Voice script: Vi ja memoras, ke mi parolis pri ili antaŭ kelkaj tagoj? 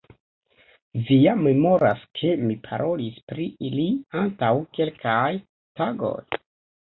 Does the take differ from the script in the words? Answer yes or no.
no